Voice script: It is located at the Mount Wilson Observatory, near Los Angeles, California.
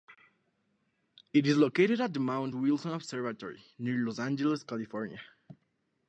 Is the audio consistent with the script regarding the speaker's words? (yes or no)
yes